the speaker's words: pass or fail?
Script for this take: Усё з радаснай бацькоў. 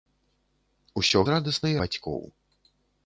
pass